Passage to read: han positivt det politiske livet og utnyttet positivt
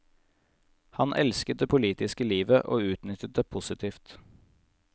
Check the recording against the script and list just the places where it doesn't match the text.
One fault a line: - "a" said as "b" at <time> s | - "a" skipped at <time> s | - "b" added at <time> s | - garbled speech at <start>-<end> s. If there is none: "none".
- "positivt" said as "elsket" at 1.2 s
- "det" added at 3.4 s